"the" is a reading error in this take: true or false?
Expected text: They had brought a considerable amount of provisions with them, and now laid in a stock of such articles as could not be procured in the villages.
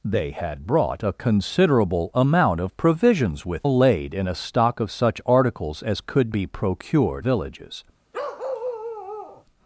true